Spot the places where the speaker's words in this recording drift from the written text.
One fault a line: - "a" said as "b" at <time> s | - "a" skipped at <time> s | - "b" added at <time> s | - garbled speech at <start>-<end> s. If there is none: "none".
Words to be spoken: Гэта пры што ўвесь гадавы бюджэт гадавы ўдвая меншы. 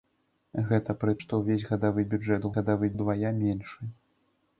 none